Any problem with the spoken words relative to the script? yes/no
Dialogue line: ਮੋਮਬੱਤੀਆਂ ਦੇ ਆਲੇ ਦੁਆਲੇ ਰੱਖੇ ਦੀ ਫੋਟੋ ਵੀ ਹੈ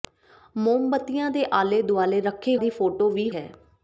no